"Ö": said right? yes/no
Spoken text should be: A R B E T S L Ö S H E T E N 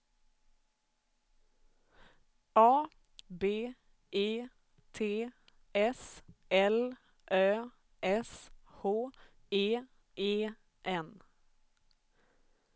yes